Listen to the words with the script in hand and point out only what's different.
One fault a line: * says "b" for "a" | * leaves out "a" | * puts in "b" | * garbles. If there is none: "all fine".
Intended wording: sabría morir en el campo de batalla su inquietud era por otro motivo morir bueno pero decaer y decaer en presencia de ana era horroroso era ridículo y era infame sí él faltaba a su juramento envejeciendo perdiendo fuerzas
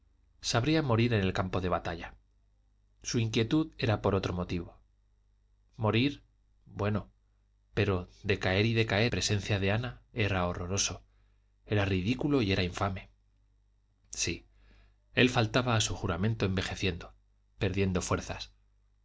* leaves out "en"